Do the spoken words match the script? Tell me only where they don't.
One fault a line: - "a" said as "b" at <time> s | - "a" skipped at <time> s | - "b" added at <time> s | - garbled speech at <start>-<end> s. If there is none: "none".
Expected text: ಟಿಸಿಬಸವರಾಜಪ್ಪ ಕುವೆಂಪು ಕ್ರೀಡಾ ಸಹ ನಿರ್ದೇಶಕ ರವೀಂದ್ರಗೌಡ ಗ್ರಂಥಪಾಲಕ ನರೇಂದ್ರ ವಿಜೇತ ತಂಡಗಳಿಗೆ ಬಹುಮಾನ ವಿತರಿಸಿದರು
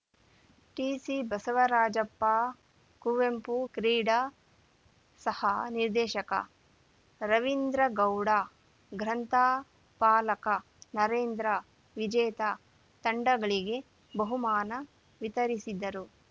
none